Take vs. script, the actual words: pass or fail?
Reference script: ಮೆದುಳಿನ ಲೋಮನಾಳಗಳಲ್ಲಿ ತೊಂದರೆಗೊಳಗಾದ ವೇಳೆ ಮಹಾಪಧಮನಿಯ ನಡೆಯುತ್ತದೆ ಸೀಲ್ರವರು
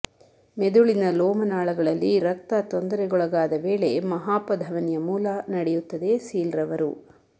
fail